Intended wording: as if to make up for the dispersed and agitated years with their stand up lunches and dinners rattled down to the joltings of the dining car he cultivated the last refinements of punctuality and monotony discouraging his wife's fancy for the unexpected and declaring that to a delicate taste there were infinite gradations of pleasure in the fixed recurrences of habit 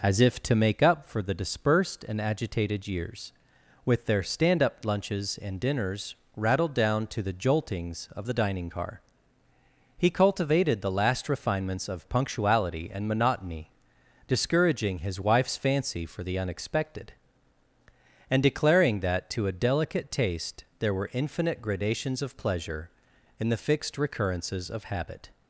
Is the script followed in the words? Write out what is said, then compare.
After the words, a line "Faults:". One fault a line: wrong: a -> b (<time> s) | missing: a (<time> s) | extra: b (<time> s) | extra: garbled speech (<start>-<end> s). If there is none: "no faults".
as if to make up for the dispersed and agitated years with their stand up lunches and dinners rattled down to the joltings of the dining car he cultivated the last refinements of punctuality and monotony discouraging his wife's fancy for the unexpected and declaring that to a delicate taste there were infinite gradations of pleasure in the fixed recurrences of habit
Faults:
no faults